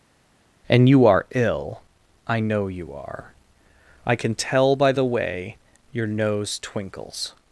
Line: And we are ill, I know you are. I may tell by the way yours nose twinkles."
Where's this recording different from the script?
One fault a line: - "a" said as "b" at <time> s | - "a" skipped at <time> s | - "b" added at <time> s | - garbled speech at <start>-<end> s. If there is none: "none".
- "we" said as "you" at 0.9 s
- "may" said as "can" at 4.1 s
- "yours" said as "your" at 5.9 s